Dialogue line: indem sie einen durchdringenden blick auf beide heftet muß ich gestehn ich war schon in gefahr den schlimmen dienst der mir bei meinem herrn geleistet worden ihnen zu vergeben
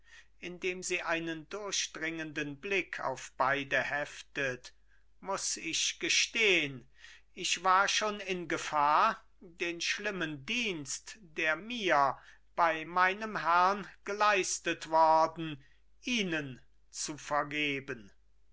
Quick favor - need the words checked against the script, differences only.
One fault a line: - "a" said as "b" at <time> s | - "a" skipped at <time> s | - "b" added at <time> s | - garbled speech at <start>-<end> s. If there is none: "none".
none